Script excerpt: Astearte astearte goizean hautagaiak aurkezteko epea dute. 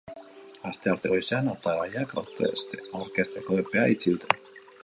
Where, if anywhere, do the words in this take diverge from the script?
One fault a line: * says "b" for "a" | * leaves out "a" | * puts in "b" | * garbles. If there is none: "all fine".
* leaves out "astearte"
* puts in "itxi"